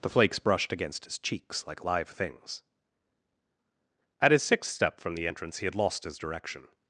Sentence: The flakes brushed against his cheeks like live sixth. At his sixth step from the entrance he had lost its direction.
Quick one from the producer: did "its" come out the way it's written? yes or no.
no